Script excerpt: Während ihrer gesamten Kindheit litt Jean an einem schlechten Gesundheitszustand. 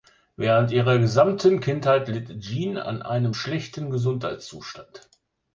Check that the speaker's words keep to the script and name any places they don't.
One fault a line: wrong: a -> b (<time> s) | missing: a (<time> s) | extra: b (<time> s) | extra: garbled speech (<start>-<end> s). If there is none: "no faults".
no faults